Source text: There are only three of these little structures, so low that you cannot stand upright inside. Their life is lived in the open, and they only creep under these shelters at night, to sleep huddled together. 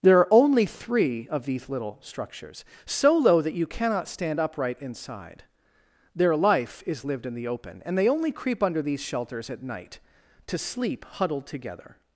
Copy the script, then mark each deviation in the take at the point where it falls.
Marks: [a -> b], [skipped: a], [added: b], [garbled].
There are only three of these little structures, so low that you cannot stand upright inside. Their life is lived in the open, and they only creep under these shelters at night, to sleep huddled together.